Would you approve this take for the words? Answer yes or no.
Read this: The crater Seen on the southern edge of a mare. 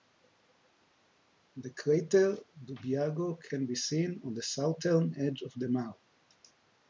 no